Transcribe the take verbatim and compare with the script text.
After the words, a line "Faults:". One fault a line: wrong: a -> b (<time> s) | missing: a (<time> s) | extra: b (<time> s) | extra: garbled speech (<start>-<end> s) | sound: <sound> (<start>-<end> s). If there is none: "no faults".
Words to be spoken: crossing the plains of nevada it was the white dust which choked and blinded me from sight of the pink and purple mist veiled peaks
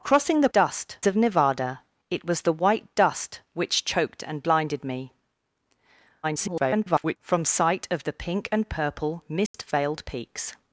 crossing the dust of nevada it was the white dust which choked and blinded me [garbled] from sight of the pink and purple mist veiled peaks
Faults:
wrong: plains -> dust (0.5 s)
extra: garbled speech (6.2-7.2 s)
sound: dropout (9.5-9.5 s)